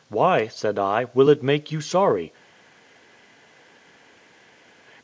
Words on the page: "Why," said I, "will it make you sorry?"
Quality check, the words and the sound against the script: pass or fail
pass